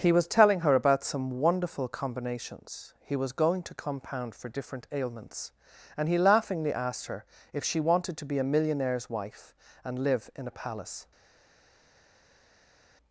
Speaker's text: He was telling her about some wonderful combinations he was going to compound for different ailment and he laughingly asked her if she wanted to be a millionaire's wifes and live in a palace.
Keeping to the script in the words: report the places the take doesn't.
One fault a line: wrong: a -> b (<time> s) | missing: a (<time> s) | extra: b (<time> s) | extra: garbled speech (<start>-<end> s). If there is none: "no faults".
wrong: ailment -> ailments (4.9 s)
wrong: wifes -> wife (9.1 s)